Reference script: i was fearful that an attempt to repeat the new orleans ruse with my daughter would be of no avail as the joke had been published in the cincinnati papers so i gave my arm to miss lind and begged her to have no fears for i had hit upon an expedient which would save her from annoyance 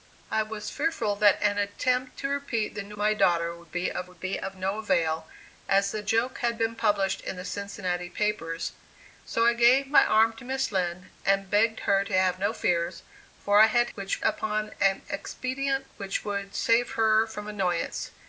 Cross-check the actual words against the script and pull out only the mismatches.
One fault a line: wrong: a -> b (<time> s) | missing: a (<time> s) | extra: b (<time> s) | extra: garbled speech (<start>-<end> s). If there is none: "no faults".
wrong: orleans ruse with my daughter -> my daughter would be of (3.0 s)
wrong: hit -> which (13.9 s)